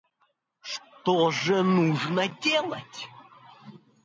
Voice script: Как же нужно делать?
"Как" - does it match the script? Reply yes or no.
no